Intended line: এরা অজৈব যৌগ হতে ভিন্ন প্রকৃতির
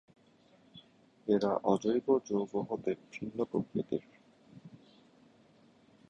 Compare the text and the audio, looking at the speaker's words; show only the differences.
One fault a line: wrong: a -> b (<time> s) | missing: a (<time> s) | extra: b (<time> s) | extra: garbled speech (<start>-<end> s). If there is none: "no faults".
no faults